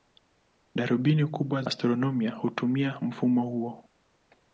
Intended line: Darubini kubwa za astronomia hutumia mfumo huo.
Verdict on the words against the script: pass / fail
fail